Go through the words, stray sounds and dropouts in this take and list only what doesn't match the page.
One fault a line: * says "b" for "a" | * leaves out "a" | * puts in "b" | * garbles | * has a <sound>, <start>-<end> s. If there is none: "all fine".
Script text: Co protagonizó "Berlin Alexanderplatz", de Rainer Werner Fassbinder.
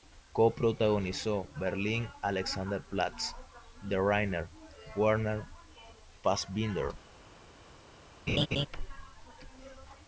* has a laugh, 8.3-8.7 s